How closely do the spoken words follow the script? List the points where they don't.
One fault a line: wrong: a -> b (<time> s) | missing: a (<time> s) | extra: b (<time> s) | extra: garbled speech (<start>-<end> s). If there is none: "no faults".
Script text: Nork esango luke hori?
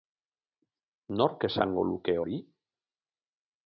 no faults